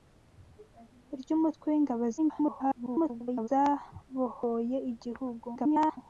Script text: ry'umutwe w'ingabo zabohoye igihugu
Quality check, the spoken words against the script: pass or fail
fail